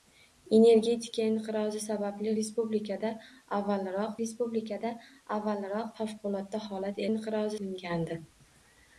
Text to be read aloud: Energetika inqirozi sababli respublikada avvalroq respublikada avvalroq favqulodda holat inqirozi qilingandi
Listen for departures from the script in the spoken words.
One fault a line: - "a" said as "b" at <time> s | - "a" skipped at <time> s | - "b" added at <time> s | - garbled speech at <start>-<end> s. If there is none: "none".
none